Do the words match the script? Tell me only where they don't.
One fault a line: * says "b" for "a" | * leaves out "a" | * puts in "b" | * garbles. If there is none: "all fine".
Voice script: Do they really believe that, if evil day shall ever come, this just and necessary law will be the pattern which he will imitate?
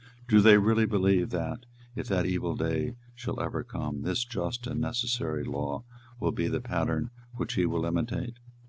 * puts in "that"